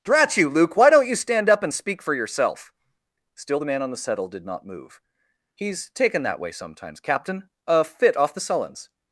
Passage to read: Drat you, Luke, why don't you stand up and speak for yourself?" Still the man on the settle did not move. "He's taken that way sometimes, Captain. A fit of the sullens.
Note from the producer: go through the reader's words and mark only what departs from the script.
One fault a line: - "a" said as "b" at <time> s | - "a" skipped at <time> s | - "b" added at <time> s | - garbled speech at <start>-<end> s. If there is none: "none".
- "of" said as "off" at 8.2 s